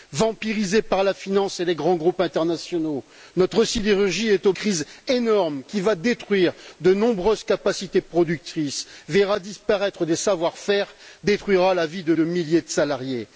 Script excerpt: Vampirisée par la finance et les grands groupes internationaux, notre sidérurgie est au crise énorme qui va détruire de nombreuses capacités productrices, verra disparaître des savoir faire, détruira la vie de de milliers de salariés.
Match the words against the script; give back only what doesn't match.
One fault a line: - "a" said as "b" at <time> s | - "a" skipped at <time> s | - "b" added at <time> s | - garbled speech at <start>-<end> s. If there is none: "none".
none